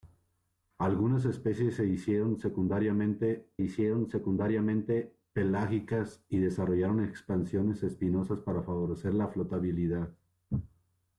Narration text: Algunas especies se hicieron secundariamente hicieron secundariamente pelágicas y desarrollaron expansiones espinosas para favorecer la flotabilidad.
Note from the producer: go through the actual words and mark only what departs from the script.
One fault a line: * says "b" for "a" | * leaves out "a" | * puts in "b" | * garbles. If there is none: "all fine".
all fine